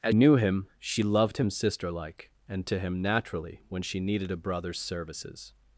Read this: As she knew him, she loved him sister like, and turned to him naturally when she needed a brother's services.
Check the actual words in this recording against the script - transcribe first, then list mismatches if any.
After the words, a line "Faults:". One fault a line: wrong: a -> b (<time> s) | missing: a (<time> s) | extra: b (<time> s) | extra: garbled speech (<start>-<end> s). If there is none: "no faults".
As knew him, she loved him sister like, and to him naturally when she needed a brother's services.
Faults:
missing: she (0.1 s)
missing: turned (2.7 s)